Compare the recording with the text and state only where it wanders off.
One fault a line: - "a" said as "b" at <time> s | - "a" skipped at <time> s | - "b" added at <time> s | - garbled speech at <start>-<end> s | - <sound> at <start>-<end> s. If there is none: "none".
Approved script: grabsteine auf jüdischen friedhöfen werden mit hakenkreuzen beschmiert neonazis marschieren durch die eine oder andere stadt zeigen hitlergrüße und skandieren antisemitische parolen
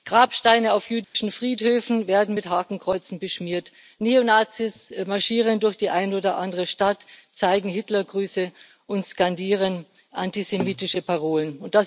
- dropout at 1.0-1.1 s